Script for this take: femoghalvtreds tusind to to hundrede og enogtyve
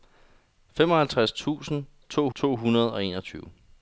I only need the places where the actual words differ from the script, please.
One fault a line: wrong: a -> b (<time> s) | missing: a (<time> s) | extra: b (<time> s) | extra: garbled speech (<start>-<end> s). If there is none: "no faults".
no faults